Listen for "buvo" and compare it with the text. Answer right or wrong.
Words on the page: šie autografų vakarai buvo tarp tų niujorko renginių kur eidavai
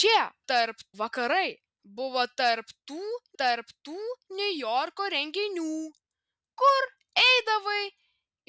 right